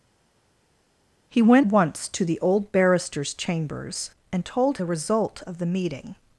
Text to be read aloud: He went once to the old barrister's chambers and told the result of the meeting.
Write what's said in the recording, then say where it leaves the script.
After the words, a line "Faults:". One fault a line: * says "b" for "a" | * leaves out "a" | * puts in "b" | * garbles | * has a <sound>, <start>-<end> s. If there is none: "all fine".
He went once to the old barrister's chambers and told the result of the meeting.
Faults:
all fine